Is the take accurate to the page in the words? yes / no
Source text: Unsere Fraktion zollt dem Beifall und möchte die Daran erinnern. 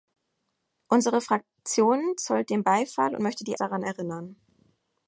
yes